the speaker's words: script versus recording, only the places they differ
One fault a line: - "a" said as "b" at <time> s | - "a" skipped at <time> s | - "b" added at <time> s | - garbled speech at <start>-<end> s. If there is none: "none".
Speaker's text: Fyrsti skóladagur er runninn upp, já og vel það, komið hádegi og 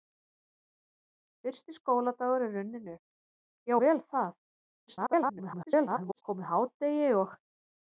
- "og" skipped at 3.8 s
- garbled speech at 4.9-6.2 s